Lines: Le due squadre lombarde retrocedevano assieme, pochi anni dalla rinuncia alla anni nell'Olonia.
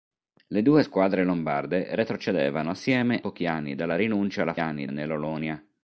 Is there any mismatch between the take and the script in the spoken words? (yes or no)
no